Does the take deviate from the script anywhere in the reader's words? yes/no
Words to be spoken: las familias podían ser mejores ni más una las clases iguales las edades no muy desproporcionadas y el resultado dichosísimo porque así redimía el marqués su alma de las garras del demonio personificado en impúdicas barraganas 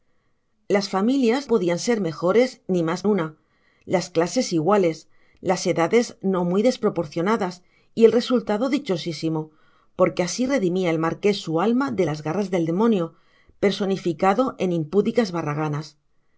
no